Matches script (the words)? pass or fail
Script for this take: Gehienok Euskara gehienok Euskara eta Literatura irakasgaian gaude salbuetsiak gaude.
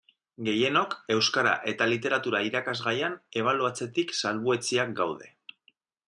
fail